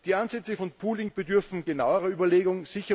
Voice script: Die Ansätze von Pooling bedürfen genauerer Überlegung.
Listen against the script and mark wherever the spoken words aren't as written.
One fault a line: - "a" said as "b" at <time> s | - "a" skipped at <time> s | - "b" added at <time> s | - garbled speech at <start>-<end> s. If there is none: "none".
none